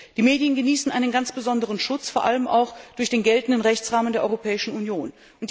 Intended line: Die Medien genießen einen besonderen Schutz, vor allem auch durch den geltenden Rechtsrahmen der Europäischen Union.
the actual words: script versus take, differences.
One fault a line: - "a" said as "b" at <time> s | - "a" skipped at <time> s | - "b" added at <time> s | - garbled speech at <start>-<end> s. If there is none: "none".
- "ganz" added at 1.1 s